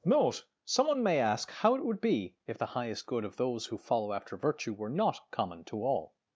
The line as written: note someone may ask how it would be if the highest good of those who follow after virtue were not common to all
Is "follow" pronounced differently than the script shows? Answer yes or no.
no